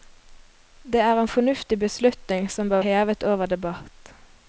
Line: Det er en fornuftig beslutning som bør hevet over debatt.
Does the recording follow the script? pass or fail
pass